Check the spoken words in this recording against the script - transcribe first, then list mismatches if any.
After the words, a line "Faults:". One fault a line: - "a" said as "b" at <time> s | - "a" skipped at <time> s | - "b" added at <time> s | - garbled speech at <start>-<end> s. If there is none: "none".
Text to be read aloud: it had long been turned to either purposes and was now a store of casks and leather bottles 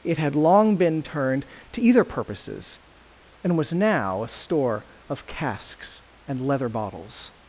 it had long been turned to either purposes and was now a store of casks and leather bottles
Faults:
none